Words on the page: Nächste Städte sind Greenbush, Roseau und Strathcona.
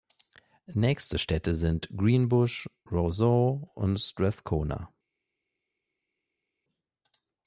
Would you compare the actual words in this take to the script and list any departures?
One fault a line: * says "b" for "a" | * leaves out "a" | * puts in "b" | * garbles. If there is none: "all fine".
all fine